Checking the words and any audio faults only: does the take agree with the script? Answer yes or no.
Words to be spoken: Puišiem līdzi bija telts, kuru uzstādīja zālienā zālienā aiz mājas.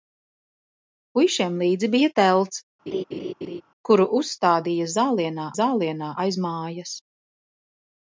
no